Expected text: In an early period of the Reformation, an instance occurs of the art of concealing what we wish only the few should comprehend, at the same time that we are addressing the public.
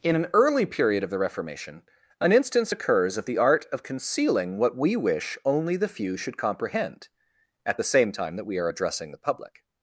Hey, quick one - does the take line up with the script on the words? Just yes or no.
yes